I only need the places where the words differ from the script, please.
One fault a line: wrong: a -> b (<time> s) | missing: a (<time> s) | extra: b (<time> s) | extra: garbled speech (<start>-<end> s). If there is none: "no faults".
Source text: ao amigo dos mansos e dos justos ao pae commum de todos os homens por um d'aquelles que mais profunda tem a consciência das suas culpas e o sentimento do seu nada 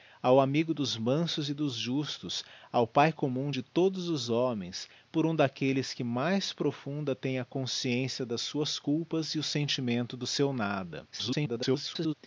extra: garbled speech (11.1-12.1 s)